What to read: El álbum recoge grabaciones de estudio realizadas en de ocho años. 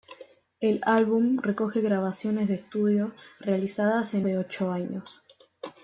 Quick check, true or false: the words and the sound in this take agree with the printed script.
true